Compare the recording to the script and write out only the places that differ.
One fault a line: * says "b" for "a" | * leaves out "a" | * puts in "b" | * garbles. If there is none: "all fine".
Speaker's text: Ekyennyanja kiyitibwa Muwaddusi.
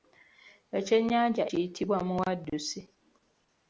all fine